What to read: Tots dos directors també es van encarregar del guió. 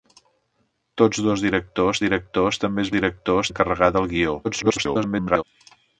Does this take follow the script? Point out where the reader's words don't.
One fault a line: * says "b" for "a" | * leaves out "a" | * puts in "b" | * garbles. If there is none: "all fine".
* puts in "directors"
* says "directors" for "van"
* garbles